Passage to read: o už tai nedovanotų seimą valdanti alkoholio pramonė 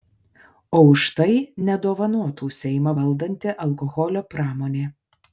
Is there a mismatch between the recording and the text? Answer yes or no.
no